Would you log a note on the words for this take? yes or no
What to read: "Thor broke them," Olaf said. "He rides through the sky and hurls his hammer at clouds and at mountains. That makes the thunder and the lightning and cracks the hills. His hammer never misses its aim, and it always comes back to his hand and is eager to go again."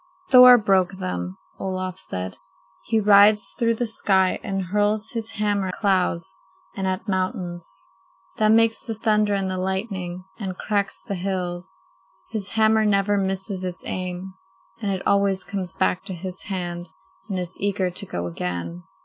yes